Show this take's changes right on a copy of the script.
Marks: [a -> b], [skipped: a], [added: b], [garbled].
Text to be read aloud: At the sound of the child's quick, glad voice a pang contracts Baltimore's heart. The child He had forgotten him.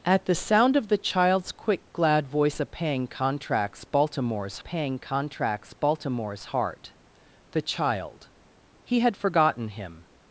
At the sound of the child's quick, glad voice a pang contracts Baltimore's [added: pang contracts Baltimore's] heart. The child He had forgotten him.